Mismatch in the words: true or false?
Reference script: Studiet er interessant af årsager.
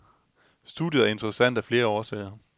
true